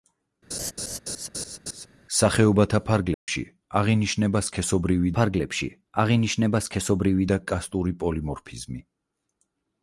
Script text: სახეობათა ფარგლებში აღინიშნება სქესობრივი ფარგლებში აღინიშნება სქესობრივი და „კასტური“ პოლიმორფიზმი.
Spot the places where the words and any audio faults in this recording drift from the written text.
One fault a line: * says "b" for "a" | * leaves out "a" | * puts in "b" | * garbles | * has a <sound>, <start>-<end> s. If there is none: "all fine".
* has a laugh, 0.5-1.9 s
* has a dropout, 3.1-3.3 s